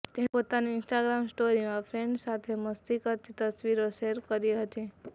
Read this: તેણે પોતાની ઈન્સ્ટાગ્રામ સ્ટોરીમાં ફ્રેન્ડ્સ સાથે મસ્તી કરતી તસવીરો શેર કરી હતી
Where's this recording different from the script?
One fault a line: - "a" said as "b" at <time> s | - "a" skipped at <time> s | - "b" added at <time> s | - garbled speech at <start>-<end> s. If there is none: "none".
none